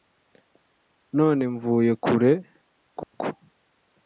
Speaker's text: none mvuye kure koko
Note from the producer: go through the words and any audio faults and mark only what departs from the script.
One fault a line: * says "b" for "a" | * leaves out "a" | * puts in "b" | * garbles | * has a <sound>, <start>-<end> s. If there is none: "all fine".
* has a dropout, 3.0-3.1 s